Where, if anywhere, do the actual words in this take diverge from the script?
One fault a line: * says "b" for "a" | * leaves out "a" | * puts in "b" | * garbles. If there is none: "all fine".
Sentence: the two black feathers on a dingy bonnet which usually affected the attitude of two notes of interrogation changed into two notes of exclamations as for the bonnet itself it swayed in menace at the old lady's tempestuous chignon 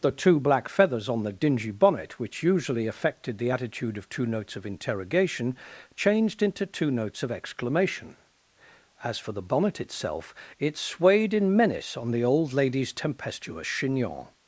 * says "the" for "a"
* says "exclamation" for "exclamations"
* says "on" for "at"